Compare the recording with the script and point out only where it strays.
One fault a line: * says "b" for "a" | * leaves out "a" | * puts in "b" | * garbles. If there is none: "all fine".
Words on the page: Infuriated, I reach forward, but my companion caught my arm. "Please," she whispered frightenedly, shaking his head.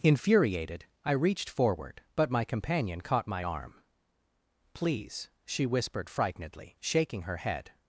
* says "reached" for "reach"
* says "her" for "his"